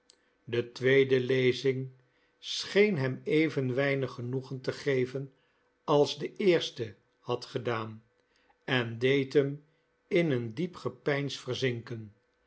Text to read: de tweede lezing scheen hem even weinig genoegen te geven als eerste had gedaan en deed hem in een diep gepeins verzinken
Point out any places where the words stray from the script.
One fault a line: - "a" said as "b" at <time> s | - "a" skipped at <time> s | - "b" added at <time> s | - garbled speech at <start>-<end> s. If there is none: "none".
- "de" added at 6.2 s